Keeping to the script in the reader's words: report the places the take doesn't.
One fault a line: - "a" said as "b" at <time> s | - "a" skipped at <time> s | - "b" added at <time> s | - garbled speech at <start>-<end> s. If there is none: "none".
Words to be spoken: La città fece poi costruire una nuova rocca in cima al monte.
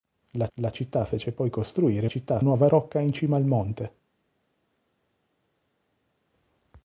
- "la" added at 0.5 s
- "una" said as "città" at 2.0 s